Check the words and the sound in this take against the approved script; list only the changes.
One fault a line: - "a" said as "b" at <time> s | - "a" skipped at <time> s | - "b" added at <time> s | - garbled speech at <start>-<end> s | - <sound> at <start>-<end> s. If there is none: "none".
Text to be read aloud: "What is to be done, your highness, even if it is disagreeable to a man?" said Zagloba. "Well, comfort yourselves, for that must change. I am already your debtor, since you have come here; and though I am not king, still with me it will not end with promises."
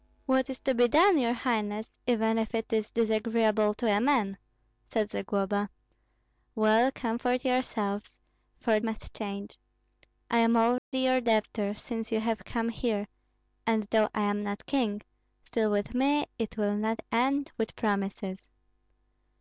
- "that" skipped at 8.8 s
- dropout at 10.8-10.9 s